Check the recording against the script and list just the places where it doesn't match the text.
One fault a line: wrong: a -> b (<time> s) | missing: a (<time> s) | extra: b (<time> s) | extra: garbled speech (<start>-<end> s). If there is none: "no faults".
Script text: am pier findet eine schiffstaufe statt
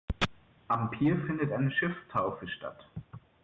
no faults